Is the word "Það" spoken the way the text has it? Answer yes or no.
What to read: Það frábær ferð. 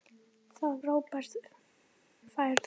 yes